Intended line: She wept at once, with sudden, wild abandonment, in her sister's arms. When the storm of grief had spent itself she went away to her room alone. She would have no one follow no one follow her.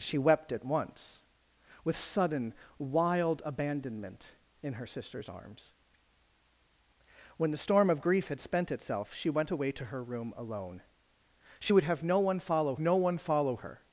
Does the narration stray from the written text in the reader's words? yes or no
no